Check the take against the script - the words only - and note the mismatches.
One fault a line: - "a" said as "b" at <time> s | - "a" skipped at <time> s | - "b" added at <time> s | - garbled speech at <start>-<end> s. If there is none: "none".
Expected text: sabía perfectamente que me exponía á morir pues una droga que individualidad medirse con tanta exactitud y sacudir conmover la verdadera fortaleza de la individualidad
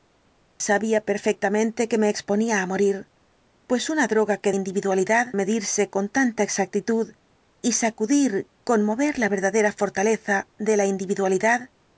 none